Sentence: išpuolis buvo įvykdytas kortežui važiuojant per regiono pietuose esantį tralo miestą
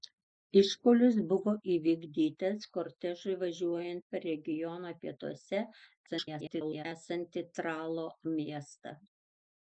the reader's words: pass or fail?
fail